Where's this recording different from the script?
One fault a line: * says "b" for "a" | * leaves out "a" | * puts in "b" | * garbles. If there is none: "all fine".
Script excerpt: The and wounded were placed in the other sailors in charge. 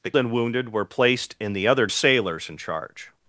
all fine